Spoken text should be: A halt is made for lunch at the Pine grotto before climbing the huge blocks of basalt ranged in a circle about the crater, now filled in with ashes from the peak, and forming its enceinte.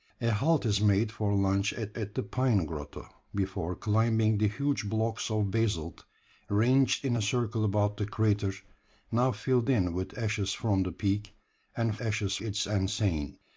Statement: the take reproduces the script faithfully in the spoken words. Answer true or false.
false